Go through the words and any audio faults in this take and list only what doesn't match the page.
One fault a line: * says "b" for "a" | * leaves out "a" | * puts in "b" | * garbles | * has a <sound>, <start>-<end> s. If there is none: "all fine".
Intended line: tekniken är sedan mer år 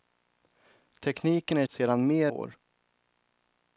all fine